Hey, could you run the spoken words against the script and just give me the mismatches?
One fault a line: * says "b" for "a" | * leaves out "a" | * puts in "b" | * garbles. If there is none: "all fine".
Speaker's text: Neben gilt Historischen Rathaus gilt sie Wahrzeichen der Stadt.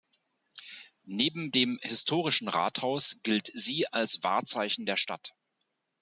* says "dem" for "gilt"
* puts in "als"